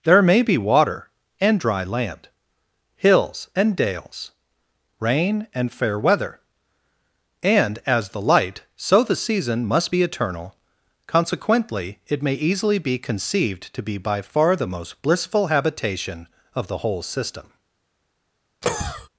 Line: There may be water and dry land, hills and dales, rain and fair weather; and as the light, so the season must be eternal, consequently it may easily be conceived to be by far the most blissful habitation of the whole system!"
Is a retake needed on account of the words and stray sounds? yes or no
yes